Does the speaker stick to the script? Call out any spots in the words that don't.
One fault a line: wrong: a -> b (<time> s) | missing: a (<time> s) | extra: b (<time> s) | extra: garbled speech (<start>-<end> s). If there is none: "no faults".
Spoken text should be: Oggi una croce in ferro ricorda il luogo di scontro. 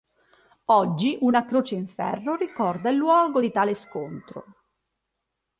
extra: tale (3.5 s)